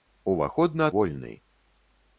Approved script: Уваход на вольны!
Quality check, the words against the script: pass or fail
pass